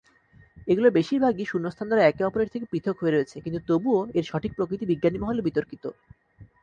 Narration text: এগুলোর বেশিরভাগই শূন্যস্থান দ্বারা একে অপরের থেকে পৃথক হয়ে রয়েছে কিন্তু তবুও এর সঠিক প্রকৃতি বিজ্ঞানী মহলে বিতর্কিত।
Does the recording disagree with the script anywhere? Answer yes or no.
no